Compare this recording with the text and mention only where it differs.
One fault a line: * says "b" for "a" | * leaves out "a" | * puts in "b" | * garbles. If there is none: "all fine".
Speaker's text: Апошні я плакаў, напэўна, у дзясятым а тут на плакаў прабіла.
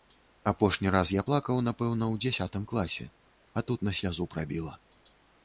* puts in "раз"
* puts in "класе"
* says "слязу" for "плакаў"